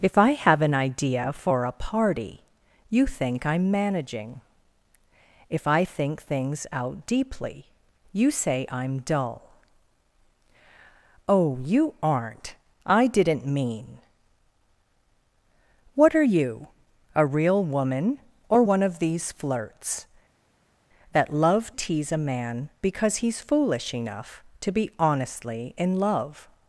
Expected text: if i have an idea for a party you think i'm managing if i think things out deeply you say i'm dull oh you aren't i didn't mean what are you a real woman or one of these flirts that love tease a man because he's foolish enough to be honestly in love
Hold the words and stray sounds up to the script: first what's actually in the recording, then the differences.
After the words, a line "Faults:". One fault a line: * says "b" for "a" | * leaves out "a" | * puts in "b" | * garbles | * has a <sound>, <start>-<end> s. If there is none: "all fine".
if i have an idea for a party you think i'm managing if i think things out deeply you say i'm dull oh you aren't i didn't mean what are you a real woman or one of these flirts that love tease a man because he's foolish enough to be honestly in love
Faults:
all fine